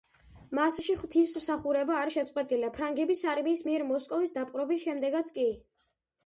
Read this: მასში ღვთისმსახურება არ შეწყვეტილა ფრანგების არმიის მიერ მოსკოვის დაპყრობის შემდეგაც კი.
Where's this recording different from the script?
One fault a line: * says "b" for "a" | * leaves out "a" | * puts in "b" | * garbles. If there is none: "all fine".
all fine